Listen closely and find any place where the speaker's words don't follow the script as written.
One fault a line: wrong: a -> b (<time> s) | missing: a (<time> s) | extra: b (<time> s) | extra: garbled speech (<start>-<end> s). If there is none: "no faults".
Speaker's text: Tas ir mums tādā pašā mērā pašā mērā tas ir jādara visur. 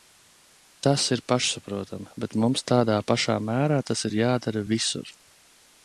extra: pašsaprotami bet (1.3 s)
missing: pašā mērā (3.8 s)